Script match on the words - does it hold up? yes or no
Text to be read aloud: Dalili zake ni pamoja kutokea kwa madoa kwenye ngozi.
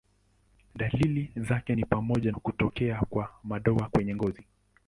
yes